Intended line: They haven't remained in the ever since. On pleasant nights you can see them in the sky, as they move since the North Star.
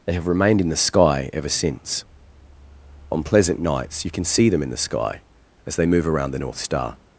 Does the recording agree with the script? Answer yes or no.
no